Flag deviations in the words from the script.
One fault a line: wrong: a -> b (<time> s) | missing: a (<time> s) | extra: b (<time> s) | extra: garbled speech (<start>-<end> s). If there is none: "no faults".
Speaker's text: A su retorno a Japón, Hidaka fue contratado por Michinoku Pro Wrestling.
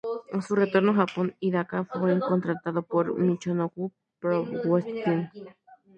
no faults